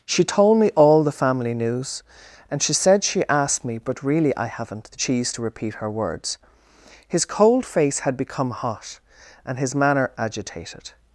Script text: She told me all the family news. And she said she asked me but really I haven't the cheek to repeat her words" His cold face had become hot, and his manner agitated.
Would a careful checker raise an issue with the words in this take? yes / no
yes